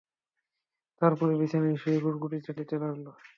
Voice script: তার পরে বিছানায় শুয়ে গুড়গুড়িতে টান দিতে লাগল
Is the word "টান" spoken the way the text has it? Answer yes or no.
no